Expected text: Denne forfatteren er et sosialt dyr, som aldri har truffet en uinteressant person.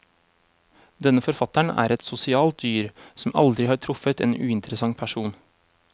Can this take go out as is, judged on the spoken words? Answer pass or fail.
pass